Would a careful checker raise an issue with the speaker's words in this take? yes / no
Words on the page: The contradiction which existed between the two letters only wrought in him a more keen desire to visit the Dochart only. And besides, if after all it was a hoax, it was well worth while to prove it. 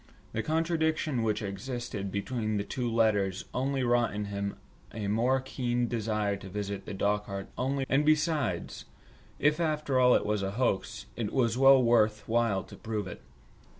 no